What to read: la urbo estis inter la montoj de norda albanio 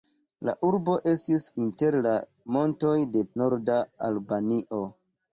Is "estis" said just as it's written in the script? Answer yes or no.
yes